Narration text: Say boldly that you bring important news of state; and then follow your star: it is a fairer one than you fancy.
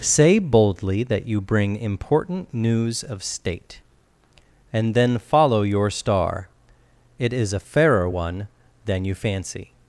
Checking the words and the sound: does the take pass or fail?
pass